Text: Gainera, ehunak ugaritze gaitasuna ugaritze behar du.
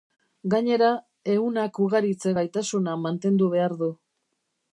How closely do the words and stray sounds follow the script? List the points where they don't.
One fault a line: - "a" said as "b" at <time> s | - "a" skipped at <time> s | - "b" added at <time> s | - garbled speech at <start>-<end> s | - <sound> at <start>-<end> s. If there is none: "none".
- "ugaritze" said as "mantendu" at 3.1 s